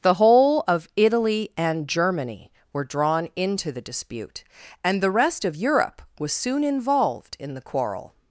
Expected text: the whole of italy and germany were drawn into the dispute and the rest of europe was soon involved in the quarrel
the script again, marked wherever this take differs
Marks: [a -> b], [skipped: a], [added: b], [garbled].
the whole of italy and germany were drawn into the dispute and the rest of europe was soon involved in the quarrel